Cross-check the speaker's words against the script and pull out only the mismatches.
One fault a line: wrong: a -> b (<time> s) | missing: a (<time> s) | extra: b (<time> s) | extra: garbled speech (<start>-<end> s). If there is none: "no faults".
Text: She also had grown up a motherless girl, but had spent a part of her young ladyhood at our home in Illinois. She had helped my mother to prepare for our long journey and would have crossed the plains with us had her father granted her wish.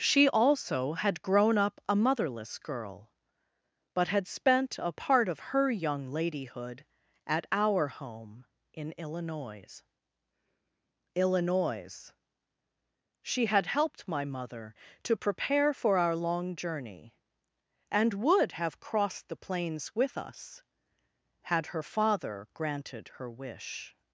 extra: Illinois (11.1 s)